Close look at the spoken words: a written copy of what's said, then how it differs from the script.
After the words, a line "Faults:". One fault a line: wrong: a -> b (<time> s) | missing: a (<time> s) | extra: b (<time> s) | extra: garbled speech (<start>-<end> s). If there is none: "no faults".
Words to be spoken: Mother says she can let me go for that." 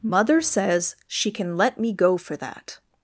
Mother says she can let me go for that."
Faults:
no faults